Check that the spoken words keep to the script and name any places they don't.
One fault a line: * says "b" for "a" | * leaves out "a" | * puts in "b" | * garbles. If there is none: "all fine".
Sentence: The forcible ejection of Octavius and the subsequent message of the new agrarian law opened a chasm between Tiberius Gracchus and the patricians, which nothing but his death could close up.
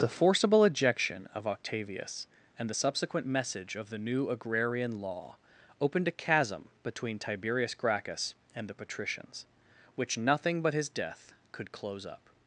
all fine